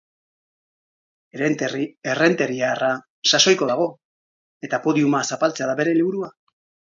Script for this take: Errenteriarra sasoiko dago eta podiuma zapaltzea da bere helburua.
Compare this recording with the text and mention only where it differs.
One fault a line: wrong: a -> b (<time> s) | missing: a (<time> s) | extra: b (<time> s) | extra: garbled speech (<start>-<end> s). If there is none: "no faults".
no faults